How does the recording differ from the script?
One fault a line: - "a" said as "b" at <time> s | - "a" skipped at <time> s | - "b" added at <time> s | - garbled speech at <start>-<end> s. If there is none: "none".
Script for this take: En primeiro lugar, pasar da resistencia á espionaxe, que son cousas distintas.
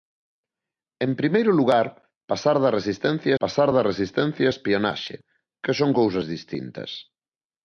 - "pasar da resistencia" added at 3.4 s